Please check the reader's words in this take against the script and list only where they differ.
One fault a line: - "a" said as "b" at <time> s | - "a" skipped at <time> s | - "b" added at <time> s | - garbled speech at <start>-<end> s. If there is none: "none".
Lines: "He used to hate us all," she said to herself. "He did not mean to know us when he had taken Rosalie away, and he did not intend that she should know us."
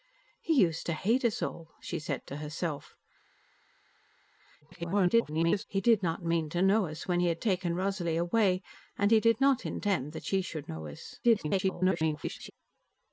- garbled speech at 4.6-5.6 s
- garbled speech at 11.2-12.5 s